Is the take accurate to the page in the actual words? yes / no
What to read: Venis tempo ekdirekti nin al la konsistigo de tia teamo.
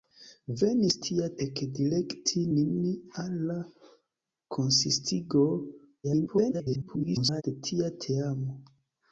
no